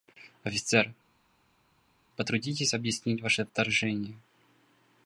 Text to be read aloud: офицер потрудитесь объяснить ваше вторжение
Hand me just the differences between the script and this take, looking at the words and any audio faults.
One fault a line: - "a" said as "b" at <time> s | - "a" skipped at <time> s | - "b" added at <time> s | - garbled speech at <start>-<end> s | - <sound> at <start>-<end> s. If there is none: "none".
none